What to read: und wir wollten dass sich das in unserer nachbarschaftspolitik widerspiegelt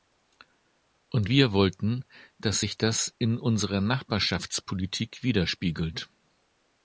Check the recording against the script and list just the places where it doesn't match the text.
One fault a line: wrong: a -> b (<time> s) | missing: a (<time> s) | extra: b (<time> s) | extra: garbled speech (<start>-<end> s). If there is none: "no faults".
no faults